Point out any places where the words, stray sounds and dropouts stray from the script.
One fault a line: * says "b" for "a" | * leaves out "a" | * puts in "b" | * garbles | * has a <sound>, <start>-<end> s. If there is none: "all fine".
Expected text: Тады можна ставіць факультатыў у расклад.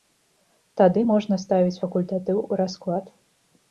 all fine